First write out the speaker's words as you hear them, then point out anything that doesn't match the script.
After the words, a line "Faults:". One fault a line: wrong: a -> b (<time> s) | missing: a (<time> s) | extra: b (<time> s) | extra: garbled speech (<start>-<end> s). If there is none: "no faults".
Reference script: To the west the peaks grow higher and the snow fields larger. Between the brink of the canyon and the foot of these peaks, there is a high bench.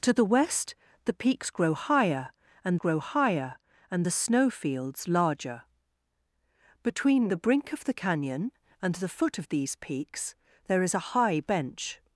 To the west the peaks grow higher and grow higher and the snow fields larger. Between the brink of the canyon and the foot of these peaks, there is a high bench.
Faults:
extra: grow higher and (2.8 s)